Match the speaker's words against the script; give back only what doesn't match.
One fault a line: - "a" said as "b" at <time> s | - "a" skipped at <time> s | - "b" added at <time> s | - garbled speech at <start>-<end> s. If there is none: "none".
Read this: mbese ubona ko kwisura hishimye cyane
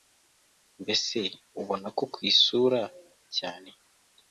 - "hishimye" skipped at 2.8 s